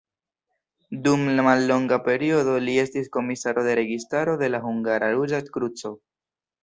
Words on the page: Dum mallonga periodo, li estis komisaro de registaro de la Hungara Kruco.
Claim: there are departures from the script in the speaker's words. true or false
true